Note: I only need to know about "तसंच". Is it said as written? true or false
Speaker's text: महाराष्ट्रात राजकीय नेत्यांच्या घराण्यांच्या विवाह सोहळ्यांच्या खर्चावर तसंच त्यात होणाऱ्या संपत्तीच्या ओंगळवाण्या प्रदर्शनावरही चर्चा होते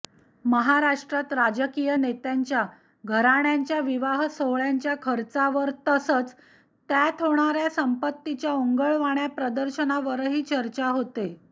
true